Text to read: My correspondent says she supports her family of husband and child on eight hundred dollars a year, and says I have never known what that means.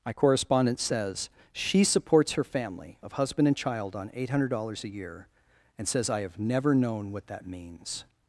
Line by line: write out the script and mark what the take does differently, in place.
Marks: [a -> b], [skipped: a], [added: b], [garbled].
My correspondent says she supports her family of husband and child on eight hundred dollars a year, and says I have never known what that means.